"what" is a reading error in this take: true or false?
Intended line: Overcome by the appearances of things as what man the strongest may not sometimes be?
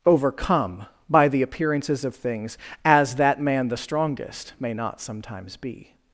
true